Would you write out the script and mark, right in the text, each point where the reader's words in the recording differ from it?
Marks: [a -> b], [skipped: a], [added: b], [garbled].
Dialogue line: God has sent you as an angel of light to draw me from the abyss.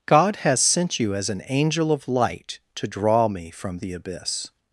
God has sent you as an angel of light to draw me from the abyss.